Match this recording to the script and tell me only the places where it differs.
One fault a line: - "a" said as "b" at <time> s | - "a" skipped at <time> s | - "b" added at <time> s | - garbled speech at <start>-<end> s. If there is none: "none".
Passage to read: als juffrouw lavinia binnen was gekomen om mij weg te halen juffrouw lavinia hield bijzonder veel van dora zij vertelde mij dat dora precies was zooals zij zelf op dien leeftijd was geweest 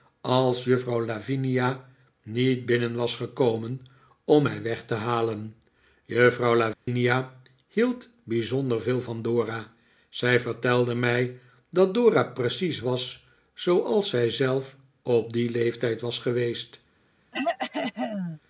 - "niet" added at 2.2 s